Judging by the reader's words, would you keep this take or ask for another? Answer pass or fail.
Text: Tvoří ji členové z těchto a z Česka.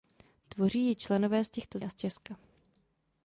pass